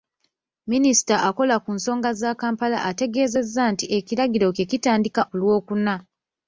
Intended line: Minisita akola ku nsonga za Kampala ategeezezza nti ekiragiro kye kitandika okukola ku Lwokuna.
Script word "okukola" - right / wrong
wrong